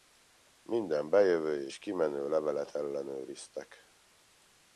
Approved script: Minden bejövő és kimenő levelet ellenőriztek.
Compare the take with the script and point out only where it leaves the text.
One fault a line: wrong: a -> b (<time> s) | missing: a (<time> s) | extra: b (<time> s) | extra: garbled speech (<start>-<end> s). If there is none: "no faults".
no faults